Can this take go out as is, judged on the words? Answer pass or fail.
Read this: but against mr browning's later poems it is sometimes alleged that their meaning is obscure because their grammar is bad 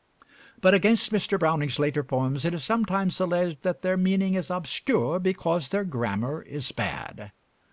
pass